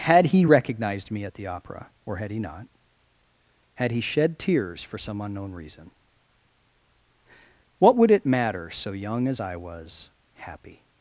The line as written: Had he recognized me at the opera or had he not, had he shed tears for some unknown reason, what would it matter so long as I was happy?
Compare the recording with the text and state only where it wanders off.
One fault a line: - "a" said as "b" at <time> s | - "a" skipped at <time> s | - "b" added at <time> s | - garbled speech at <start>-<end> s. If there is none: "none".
- "long" said as "young" at 8.9 s